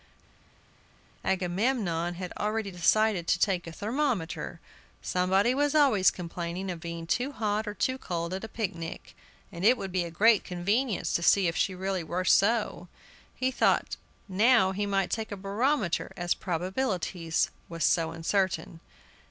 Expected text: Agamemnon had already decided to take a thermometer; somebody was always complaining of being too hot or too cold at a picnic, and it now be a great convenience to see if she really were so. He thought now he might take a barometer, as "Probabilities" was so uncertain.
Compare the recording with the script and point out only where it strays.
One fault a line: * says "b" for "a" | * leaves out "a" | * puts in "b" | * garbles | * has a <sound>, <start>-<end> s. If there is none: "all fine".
* says "would" for "now"